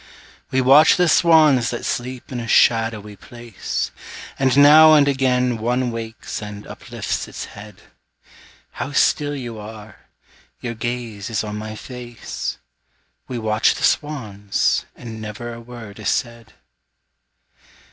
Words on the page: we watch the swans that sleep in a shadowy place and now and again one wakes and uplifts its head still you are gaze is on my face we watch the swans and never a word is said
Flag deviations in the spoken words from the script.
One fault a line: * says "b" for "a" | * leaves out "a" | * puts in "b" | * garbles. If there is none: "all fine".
* puts in "how"
* puts in "your"